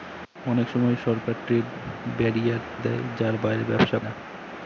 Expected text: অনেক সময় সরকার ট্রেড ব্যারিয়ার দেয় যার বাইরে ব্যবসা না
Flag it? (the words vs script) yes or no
no